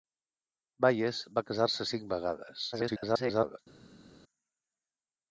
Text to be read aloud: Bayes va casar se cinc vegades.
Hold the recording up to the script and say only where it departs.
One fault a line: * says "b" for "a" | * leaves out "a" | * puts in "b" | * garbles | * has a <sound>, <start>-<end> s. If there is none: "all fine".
* garbles